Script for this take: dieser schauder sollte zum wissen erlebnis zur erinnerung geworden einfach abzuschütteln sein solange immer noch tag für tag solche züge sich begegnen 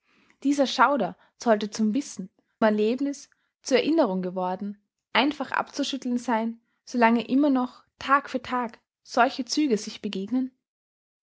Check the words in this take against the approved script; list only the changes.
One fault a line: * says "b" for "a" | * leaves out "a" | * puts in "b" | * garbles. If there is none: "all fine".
all fine